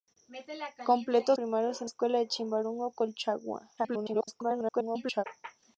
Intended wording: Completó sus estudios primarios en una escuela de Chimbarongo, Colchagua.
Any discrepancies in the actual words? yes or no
yes